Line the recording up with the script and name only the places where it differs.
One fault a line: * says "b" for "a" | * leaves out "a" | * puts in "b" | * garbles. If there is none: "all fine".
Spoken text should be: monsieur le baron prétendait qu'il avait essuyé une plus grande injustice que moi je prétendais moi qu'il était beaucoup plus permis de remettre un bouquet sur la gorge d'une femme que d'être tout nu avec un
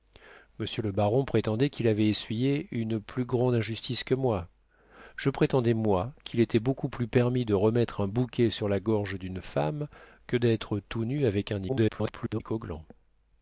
* garbles